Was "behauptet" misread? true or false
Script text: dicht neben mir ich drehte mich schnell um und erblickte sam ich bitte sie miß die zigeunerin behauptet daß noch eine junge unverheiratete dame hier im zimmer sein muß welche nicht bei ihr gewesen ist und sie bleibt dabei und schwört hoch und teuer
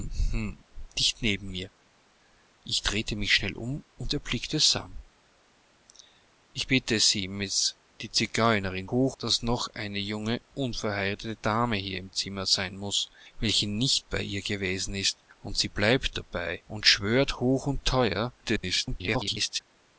true